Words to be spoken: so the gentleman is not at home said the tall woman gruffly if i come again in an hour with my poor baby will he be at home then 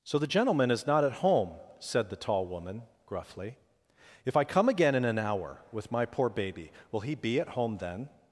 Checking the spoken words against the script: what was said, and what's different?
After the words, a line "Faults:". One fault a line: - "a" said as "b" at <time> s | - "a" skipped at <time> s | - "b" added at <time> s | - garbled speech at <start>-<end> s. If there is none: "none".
so the gentleman is not at home said the tall woman gruffly if i come again in an hour with my poor baby will he be at home then
Faults:
none